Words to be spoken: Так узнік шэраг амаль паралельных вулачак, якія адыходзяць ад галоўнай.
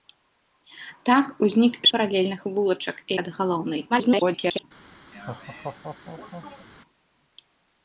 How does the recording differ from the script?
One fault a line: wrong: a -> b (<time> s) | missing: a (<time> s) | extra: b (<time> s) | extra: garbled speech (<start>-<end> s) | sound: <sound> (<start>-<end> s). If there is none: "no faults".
missing: шэраг амаль (1.8 s)
missing: якія адыходзяць (3.0 s)
extra: garbled speech (3.9-4.6 s)
sound: laugh (5.1-6.7 s)